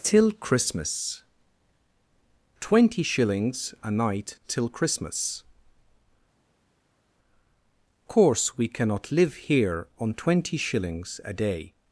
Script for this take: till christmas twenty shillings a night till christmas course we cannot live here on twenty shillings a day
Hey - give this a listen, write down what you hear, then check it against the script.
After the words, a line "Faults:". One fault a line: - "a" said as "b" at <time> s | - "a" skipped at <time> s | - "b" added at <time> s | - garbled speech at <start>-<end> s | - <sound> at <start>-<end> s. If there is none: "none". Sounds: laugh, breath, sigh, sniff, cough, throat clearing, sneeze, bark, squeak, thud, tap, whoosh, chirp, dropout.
till christmas twenty shillings a night till christmas course we cannot live here on twenty shillings a day
Faults:
none